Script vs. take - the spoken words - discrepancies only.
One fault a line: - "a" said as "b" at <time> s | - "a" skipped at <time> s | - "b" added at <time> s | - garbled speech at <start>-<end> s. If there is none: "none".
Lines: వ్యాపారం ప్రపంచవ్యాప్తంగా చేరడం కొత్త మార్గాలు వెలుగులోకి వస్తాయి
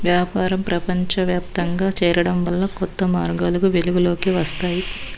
- "వల్ల" added at 2.5 s